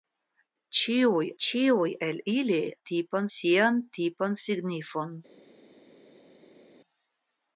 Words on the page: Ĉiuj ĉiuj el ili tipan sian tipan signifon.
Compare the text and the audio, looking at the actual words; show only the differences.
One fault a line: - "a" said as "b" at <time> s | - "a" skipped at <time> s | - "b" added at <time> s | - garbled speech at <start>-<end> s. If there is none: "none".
none